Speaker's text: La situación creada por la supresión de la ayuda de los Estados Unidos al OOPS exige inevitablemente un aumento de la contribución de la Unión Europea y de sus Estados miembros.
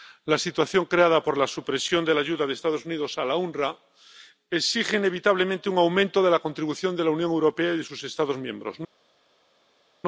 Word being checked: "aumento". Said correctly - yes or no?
yes